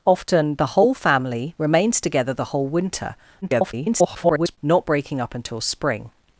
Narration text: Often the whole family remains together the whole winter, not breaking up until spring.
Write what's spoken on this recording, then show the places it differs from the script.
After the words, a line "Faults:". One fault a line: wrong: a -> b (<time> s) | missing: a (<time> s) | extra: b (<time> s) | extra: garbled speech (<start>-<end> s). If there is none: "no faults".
Often the whole family remains together the whole winter, [garbled] not breaking up until spring.
Faults:
extra: garbled speech (3.4-4.6 s)